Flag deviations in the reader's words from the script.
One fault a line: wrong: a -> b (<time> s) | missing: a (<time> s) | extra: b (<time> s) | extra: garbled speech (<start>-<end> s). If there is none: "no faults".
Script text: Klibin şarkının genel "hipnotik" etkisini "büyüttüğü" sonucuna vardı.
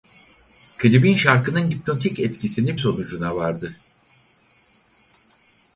missing: genel (1.7 s)
missing: büyüttüğü (2.8 s)